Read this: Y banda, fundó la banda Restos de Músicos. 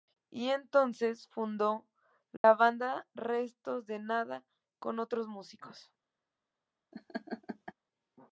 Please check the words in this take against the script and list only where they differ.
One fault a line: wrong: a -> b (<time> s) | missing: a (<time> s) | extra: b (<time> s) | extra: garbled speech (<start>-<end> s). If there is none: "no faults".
wrong: banda -> entonces (0.5 s)
extra: Nada con otros (4.0 s)